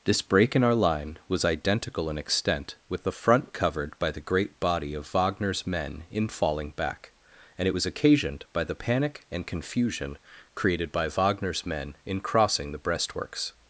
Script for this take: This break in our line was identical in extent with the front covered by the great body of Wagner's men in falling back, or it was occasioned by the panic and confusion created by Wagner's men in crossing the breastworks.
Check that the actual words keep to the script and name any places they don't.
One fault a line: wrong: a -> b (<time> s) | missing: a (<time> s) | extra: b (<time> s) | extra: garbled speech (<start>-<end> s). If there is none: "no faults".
wrong: or -> and (7.6 s)